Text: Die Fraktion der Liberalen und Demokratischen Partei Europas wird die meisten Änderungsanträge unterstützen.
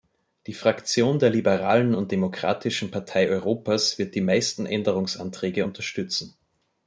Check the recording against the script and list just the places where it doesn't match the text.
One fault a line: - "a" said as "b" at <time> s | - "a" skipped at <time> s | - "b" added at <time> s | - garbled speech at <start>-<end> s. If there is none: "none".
none